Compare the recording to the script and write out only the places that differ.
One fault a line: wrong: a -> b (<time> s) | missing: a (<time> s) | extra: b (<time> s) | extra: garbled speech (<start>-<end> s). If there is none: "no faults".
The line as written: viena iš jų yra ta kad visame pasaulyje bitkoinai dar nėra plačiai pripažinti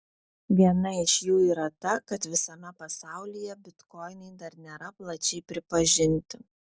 no faults